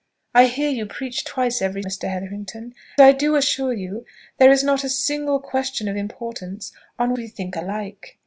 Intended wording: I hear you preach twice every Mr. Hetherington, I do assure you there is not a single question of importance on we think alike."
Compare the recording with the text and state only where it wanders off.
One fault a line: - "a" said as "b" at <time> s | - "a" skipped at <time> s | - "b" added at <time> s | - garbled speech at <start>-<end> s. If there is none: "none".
none